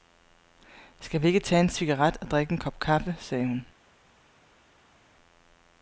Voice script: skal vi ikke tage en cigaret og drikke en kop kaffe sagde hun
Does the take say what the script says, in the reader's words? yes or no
yes